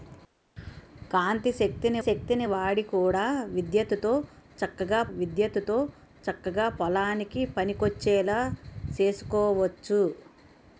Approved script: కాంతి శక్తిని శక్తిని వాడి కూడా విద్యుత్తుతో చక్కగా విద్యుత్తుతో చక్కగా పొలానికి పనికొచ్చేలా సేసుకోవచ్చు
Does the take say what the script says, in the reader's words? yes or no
yes